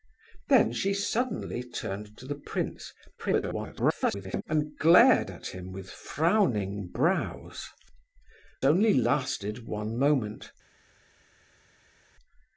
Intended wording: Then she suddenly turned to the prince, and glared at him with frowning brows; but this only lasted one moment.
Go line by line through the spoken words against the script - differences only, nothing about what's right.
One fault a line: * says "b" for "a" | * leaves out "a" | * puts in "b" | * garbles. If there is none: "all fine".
* garbles
* leaves out "but this"